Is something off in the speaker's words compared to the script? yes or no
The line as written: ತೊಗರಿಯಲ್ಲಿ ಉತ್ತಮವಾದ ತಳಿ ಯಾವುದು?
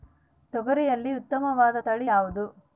no